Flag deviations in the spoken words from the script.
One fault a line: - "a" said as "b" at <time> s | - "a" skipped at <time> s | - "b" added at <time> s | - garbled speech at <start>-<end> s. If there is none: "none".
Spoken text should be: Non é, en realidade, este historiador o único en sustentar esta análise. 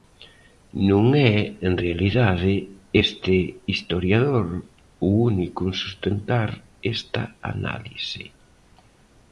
none